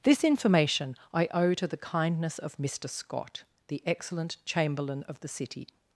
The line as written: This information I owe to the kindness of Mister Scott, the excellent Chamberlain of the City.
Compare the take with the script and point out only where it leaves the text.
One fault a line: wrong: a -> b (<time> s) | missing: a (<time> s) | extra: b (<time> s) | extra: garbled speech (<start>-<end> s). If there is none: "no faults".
no faults